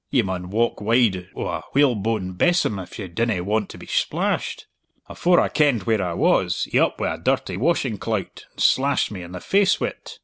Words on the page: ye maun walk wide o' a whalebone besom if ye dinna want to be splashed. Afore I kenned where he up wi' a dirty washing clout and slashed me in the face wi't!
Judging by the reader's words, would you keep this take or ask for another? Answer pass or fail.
fail